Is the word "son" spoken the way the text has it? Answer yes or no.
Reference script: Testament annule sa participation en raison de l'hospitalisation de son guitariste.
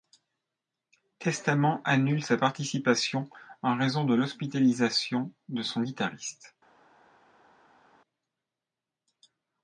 yes